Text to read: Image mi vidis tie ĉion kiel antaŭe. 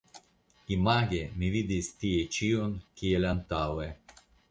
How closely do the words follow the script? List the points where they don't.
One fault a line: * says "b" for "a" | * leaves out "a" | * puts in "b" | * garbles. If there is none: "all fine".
all fine